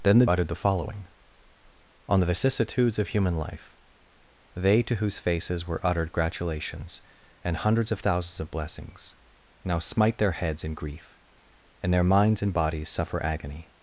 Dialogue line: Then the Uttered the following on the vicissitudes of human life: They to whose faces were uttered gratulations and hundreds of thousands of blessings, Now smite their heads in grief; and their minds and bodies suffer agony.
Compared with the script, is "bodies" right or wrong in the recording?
right